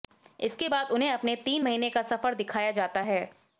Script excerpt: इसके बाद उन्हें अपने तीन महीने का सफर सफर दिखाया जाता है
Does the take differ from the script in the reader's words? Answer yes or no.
yes